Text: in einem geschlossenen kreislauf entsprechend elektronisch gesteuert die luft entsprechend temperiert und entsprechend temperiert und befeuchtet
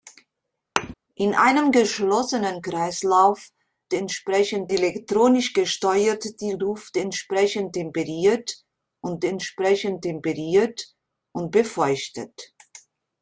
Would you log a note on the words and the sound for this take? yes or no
yes